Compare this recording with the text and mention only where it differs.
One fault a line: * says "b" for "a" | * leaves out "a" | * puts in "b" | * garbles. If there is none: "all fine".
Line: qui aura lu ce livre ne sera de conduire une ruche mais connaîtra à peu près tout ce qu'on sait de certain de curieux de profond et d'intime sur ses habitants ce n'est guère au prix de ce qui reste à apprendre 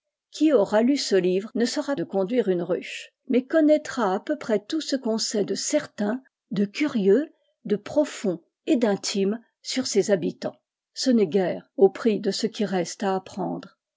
all fine